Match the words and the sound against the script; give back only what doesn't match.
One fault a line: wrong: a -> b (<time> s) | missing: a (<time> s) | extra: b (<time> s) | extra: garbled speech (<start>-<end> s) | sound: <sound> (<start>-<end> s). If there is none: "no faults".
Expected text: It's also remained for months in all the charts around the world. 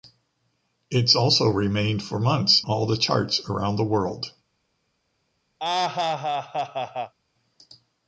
missing: in (2.6 s)
sound: laugh (5.6-7.1 s)